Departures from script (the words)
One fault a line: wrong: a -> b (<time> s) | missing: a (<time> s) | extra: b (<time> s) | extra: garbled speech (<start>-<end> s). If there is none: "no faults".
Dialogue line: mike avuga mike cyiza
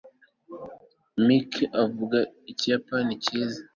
wrong: mike -> ikiyapani (2.5 s)